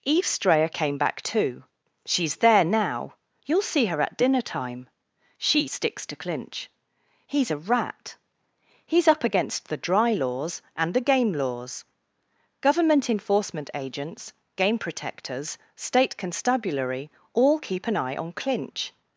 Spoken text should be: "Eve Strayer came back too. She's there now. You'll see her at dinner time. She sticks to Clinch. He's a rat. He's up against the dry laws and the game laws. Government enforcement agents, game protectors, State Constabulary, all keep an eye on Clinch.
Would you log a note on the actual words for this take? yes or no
no